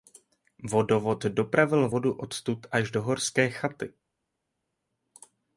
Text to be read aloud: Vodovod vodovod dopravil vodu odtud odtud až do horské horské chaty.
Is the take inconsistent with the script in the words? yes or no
yes